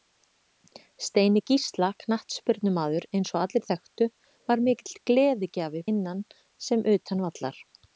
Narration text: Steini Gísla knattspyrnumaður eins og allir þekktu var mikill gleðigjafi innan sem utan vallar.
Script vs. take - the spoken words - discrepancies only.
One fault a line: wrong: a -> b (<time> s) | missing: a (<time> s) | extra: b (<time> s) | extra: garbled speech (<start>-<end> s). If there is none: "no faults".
no faults